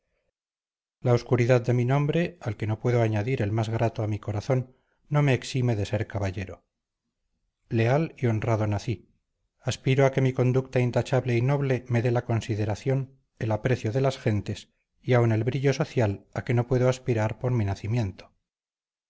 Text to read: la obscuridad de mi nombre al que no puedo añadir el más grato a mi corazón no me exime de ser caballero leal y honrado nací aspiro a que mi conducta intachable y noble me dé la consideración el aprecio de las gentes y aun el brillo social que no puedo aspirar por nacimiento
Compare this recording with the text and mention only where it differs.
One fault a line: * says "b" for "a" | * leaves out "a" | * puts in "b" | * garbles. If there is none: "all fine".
* puts in "a"
* puts in "mi"